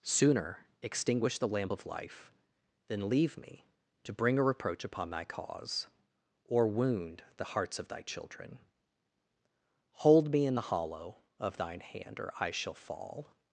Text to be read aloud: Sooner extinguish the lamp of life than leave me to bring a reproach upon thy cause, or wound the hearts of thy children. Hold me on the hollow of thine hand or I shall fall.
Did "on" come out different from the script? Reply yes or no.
yes